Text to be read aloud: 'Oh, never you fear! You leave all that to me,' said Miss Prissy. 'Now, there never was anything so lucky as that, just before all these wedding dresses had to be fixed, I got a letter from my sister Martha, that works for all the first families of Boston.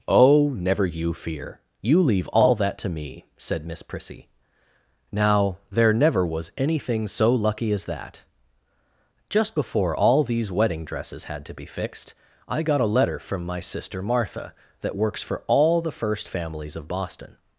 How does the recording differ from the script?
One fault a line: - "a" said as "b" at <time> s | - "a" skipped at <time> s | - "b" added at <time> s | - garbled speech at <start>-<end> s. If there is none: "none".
none